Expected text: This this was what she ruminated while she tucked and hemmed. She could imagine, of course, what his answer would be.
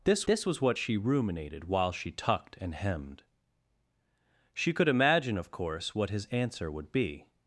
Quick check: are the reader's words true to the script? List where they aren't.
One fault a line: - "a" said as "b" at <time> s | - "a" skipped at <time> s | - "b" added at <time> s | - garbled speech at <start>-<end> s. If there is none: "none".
none